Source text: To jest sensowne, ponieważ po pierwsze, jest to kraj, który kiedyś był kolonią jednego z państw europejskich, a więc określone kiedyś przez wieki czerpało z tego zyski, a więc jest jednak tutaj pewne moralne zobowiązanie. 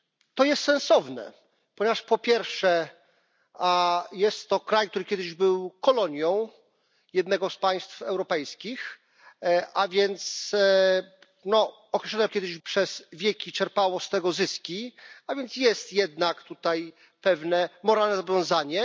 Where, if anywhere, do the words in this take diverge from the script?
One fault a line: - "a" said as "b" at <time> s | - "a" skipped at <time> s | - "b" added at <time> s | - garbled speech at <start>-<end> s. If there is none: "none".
none